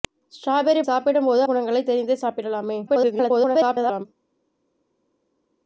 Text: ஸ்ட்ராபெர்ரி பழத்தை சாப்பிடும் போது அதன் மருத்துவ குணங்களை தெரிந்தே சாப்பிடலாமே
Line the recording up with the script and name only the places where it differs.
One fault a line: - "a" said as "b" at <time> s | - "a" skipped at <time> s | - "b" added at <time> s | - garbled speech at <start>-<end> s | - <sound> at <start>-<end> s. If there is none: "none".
- "பழத்தை" skipped at 0.8 s
- "அதன் மருத்துவ" skipped at 1.4 s
- garbled speech at 2.9-4.1 s